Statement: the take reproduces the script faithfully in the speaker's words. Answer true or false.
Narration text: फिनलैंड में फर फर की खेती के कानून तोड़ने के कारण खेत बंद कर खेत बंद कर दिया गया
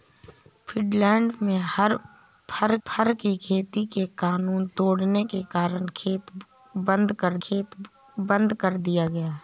true